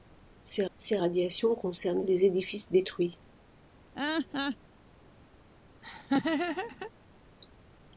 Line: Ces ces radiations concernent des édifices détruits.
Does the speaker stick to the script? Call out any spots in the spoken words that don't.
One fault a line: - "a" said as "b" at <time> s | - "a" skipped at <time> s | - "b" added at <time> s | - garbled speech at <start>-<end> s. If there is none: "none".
none